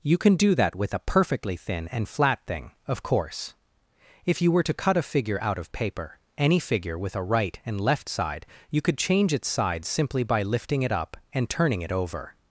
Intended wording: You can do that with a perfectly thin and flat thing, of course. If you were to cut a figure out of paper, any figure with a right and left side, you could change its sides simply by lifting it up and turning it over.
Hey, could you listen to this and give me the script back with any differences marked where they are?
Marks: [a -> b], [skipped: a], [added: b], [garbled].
You can do that with a perfectly thin and flat thing, of course. If you were to cut a figure out of paper, any figure with a right and left side, you could change its sides simply by lifting it up and turning it over.